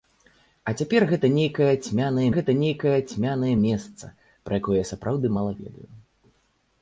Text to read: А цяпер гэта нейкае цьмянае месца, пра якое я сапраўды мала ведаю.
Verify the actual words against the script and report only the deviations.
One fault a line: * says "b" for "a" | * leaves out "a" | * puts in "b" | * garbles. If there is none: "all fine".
* puts in "гэта нейкае цьмянае"